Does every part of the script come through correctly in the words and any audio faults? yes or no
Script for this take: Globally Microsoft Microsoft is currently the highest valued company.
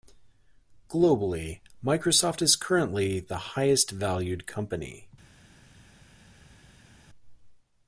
no